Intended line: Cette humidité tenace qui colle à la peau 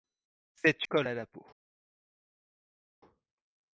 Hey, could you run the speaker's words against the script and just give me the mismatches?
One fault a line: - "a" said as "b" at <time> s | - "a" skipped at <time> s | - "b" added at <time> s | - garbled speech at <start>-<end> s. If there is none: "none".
- "humidité tenace qui" skipped at 0.8 s